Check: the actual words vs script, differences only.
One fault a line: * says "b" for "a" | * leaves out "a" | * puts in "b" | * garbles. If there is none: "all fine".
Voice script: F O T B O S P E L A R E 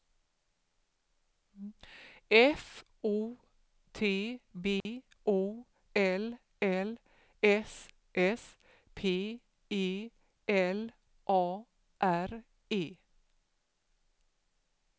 * puts in "L L S"